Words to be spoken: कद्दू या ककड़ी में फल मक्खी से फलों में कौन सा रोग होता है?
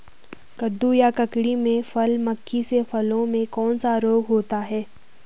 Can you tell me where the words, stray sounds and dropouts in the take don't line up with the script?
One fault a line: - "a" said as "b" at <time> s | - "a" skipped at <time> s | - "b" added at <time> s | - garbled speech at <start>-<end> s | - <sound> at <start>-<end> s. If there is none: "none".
none